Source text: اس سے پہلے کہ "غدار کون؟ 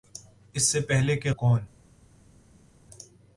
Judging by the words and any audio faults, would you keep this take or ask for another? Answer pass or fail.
fail